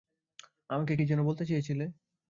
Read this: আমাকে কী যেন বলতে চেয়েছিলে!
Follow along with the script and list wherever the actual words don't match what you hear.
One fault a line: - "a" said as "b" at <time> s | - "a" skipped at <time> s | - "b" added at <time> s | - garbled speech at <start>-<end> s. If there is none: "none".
none